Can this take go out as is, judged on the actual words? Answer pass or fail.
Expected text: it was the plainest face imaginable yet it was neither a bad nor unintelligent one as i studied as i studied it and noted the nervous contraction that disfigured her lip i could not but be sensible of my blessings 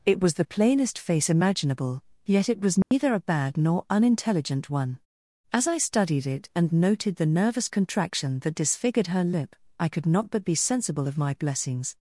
fail